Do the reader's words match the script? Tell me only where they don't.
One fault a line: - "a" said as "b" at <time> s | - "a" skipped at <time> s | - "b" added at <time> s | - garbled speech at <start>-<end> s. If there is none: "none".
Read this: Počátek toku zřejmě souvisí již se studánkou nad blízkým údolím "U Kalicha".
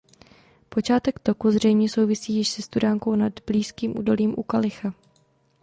none